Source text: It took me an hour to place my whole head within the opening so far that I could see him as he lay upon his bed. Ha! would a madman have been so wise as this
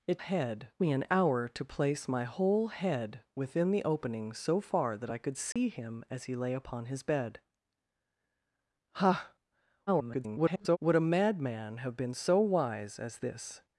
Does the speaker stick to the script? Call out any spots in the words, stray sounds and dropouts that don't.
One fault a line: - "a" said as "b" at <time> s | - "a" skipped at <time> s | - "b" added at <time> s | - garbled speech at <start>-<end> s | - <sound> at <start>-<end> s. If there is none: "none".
- "took" said as "head" at 0.2 s
- dropout at 5.5-5.6 s
- garbled speech at 9.9-10.8 s